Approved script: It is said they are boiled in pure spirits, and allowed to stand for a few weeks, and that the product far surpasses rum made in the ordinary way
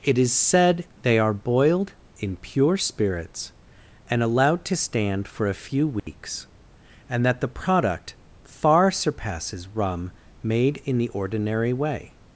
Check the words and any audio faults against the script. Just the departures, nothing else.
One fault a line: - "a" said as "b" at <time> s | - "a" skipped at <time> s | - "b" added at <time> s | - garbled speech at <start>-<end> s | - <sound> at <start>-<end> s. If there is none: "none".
- dropout at 6.0-6.1 s